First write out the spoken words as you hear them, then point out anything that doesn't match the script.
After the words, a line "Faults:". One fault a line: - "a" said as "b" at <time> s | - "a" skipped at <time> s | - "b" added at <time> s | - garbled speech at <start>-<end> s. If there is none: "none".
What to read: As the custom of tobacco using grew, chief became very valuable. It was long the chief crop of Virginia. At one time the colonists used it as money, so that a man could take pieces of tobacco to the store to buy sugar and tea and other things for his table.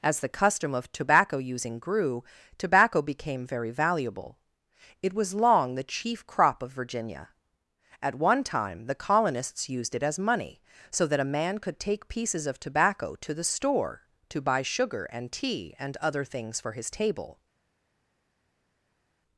As the custom of tobacco using grew, tobacco became very valuable. It was long the chief crop of Virginia. At one time the colonists used it as money, so that a man could take pieces of tobacco to the store to buy sugar and tea and other things for his table.
Faults:
- "chief" said as "tobacco" at 2.6 s